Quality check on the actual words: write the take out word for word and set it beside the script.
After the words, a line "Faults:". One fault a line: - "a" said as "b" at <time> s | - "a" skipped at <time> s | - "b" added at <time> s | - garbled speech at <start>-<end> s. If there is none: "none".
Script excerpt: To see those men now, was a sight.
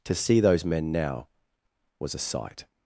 To see those men now, was a sight.
Faults:
none